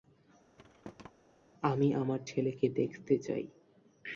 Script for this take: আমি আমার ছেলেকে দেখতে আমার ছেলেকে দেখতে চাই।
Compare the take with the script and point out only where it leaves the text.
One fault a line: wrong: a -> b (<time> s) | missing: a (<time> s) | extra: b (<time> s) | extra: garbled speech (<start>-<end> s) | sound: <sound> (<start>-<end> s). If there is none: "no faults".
sound: thud (0.6-1.1 s)
missing: আমার ছেলেকে দেখতে (3.1 s)